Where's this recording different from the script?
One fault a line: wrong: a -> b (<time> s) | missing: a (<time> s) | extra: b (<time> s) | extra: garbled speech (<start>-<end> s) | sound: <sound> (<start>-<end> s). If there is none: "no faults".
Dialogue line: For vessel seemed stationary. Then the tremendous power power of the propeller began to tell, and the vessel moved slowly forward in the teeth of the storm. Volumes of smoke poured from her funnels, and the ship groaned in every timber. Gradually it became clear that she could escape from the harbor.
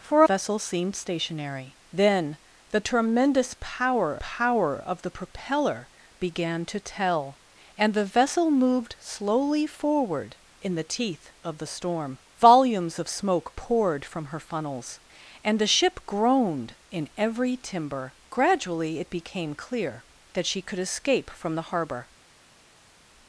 no faults